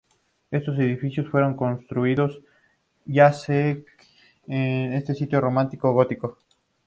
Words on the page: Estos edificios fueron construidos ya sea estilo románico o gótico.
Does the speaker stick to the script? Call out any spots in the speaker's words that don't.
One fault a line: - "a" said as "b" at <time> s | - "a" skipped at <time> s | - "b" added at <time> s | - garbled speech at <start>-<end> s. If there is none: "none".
- "en" added at 4.5 s